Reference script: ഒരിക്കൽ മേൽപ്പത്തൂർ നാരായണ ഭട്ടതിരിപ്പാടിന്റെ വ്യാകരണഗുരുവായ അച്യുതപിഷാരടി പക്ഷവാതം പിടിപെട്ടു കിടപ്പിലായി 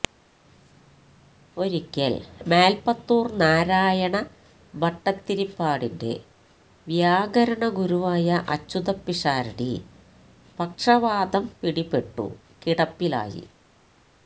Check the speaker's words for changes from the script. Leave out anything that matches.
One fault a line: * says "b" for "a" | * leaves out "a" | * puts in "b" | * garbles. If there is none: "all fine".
all fine